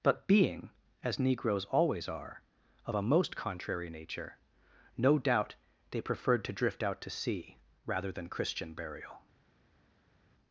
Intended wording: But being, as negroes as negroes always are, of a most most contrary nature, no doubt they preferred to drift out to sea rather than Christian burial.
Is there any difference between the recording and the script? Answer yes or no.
yes